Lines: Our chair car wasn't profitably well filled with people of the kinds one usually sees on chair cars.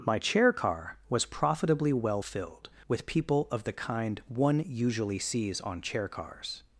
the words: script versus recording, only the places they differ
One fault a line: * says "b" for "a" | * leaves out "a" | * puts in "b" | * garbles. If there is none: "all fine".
* says "My" for "Our"
* says "was" for "wasn't"
* says "kind" for "kinds"